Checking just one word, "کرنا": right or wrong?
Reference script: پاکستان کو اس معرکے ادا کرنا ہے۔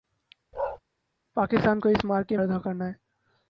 right